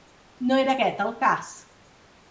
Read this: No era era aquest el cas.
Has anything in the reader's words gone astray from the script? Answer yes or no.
yes